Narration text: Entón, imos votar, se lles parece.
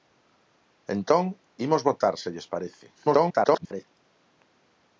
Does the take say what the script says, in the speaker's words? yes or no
no